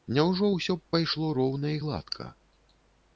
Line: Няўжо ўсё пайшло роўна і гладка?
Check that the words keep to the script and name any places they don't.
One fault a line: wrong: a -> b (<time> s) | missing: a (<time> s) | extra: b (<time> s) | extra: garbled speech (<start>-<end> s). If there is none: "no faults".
extra: б (0.8 s)